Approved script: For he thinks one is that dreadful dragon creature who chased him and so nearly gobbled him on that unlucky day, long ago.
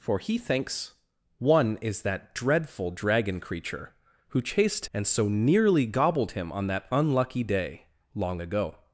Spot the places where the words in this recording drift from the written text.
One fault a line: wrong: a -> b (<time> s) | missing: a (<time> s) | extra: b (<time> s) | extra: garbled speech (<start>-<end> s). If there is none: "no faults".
missing: him (4.9 s)